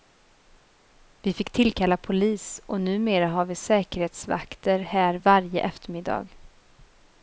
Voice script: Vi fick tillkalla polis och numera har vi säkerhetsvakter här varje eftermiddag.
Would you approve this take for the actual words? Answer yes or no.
yes